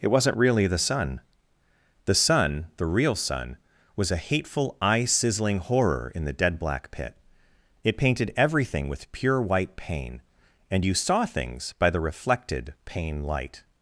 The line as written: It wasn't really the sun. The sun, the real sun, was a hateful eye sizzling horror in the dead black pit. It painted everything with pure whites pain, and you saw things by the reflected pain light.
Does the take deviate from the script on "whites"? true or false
true